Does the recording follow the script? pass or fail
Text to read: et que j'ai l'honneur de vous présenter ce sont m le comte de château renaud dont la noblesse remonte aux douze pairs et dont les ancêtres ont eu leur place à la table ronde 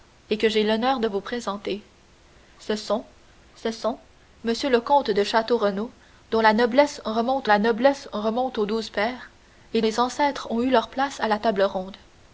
fail